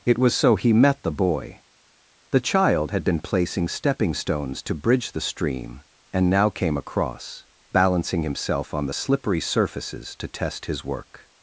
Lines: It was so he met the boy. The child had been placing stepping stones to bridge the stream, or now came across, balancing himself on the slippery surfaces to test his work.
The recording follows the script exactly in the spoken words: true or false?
false